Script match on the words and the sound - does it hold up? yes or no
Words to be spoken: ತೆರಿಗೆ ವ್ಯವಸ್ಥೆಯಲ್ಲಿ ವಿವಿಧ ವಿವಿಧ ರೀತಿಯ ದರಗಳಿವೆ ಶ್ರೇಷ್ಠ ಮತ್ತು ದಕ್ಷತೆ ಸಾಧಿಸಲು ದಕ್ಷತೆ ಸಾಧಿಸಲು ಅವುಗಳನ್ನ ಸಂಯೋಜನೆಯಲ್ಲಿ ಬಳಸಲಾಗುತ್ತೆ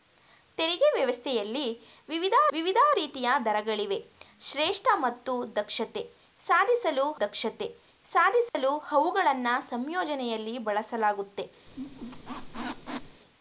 no